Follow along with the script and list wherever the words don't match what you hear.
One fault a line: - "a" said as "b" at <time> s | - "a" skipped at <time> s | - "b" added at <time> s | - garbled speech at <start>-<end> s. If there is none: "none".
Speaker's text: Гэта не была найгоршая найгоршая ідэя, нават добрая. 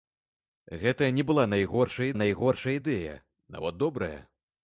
none